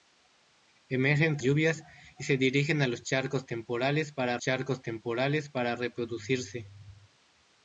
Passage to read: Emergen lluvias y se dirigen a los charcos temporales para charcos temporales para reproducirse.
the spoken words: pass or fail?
pass